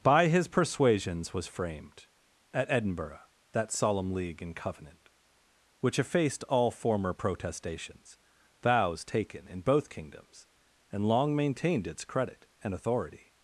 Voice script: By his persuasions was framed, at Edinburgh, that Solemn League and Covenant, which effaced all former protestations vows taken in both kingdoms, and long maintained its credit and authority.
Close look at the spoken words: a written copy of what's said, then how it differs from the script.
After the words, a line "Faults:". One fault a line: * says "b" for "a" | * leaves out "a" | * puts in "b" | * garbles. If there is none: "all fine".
By his persuasions was framed, at Edinburgh, that Solemn League and Covenant, which effaced all former protestations vows taken in both kingdoms, and long maintained its credit and authority.
Faults:
all fine